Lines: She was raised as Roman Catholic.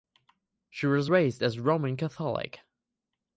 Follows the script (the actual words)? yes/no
yes